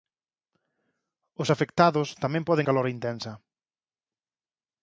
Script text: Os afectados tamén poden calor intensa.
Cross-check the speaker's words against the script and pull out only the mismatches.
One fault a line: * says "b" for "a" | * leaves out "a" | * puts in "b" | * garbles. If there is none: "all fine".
all fine